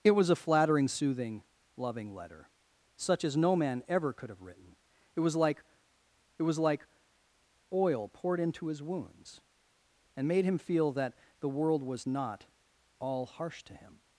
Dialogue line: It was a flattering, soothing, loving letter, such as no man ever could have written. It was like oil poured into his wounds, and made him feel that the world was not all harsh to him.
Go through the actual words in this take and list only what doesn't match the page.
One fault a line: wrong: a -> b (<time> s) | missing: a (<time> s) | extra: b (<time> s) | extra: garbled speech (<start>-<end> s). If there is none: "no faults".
extra: was like (6.4 s)